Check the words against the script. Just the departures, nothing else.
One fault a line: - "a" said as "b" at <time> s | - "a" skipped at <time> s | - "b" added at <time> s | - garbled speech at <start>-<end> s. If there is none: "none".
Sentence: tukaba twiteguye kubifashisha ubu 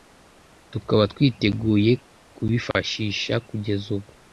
- "kugeza" added at 3.5 s